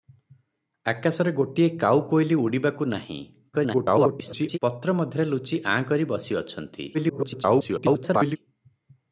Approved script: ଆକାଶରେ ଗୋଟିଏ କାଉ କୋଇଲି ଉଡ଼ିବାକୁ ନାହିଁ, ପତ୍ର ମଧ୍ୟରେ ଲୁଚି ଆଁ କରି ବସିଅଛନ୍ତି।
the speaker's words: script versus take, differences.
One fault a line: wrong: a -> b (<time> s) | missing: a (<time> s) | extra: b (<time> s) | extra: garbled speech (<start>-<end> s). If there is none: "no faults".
extra: garbled speech (3.5-4.6 s)
extra: garbled speech (6.9-8.4 s)